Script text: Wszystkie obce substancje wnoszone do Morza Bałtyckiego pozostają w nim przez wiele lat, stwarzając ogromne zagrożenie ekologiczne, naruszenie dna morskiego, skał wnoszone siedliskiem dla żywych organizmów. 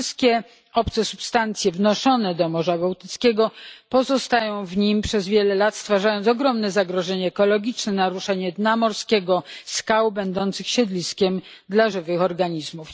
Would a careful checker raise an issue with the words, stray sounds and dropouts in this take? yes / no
yes